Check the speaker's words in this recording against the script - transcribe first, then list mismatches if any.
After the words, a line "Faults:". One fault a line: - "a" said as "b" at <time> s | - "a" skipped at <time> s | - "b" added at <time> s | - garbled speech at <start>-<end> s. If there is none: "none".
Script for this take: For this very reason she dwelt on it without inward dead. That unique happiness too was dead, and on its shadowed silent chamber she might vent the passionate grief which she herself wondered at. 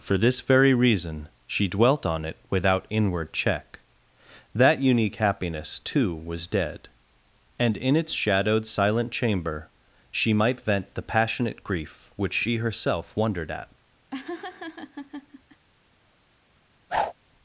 For this very reason she dwelt on it without inward check. That unique happiness too was dead, and in its shadowed silent chamber she might vent the passionate grief which she herself wondered at.
Faults:
- "dead" said as "check" at 3.3 s
- "on" said as "in" at 7.7 s